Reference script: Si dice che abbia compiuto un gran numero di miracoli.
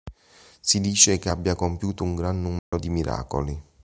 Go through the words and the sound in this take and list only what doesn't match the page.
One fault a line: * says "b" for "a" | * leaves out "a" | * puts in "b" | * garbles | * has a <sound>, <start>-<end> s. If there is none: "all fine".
* has a dropout, 2.6-2.7 s